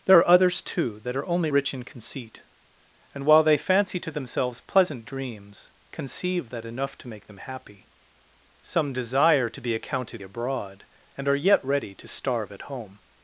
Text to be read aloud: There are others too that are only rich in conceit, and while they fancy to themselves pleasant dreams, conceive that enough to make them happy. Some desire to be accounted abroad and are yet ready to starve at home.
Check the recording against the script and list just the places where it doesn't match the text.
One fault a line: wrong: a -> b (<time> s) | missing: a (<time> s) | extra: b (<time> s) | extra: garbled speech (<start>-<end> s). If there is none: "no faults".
no faults